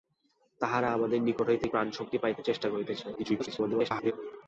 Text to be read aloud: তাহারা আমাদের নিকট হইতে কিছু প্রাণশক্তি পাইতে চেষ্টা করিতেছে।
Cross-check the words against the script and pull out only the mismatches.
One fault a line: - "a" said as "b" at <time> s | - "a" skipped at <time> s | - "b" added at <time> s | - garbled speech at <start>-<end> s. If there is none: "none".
- "কিছু" skipped at 1.7 s
- garbled speech at 3.2-4.1 s